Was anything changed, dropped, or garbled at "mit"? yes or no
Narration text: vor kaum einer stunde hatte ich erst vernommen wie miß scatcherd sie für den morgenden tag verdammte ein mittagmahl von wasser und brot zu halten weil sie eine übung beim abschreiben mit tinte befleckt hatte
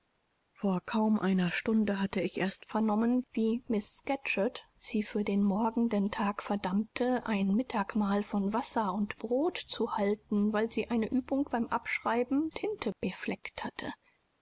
yes